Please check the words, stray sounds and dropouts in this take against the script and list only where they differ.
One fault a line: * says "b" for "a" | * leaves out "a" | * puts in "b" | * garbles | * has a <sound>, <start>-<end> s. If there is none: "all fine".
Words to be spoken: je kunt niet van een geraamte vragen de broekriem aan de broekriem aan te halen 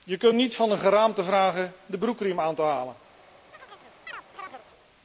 * leaves out "de broekriem aan"
* has a chirp, 3.5-4.7 s